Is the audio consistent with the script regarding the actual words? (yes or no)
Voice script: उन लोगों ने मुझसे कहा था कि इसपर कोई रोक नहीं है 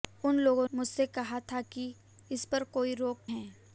no